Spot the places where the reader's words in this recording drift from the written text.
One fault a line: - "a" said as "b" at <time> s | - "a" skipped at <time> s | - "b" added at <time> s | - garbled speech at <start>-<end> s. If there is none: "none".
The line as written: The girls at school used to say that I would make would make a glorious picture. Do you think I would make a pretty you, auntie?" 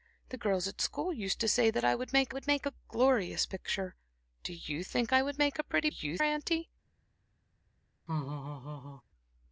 none